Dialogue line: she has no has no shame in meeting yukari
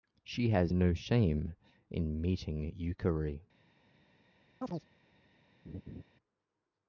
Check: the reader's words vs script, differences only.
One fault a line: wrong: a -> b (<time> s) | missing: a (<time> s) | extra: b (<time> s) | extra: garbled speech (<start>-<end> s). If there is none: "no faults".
missing: has no (0.9 s)